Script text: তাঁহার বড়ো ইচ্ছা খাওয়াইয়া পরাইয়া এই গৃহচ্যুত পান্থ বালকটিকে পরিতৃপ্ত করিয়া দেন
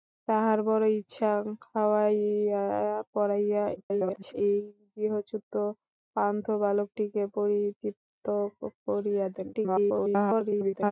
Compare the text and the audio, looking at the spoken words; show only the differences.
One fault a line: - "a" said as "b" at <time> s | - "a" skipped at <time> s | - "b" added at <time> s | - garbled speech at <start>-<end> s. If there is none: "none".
- garbled speech at 3.8-4.3 s
- garbled speech at 9.5-10.9 s